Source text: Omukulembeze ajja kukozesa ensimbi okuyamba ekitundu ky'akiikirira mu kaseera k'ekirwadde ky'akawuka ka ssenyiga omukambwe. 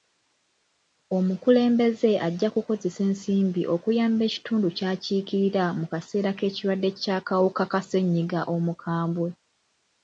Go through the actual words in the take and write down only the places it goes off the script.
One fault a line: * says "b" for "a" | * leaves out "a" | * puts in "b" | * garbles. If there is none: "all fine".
all fine